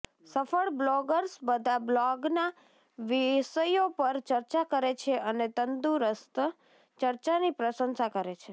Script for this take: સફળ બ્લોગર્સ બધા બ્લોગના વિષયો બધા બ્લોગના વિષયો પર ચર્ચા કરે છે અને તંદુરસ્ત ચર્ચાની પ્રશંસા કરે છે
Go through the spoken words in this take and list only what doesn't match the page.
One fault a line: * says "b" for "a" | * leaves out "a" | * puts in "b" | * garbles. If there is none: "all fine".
* leaves out "બધા બ્લોગના વિષયો"